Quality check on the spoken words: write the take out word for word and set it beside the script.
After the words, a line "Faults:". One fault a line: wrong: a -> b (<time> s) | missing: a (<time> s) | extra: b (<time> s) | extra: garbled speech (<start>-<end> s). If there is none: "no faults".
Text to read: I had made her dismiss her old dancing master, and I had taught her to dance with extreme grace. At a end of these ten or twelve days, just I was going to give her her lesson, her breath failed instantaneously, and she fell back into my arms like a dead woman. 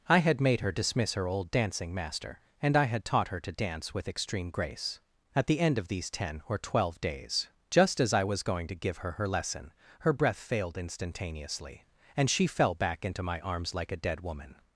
I had made her dismiss her old dancing master, and I had taught her to dance with extreme grace. At the end of these ten or twelve days, just as I was going to give her her lesson, her breath failed instantaneously, and she fell back into my arms like a dead woman.
Faults:
wrong: a -> the (5.5 s)
extra: as (8.0 s)